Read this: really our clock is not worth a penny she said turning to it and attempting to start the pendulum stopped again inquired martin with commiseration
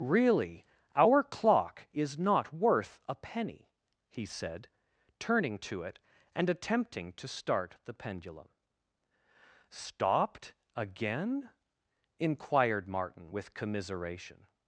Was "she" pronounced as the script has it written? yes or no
no